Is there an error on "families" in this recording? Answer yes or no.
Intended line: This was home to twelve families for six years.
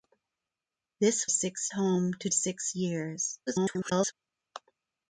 yes